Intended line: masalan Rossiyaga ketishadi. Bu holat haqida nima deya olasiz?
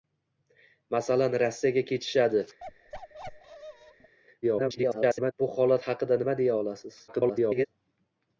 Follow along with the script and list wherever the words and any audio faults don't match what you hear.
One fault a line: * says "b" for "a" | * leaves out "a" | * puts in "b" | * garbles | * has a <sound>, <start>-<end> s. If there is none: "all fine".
* has a bark, 2.6-4.1 s
* garbles
* garbles